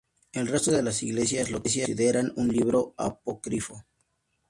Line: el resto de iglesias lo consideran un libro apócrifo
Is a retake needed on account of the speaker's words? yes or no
yes